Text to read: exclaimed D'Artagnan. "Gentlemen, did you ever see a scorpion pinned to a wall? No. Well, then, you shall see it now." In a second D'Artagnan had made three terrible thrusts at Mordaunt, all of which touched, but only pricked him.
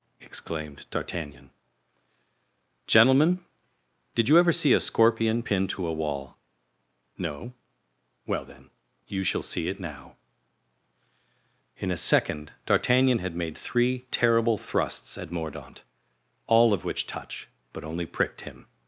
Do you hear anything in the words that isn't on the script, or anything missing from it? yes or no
yes